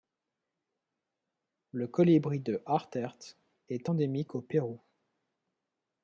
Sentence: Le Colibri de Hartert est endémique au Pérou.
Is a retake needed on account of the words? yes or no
no